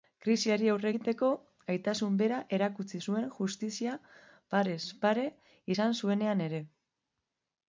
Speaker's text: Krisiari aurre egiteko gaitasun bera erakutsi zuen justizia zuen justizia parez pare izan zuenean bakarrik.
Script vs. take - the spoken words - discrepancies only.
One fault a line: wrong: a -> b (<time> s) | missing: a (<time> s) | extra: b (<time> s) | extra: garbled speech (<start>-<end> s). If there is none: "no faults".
missing: zuen justizia (4.0 s)
wrong: bakarrik -> ere (6.5 s)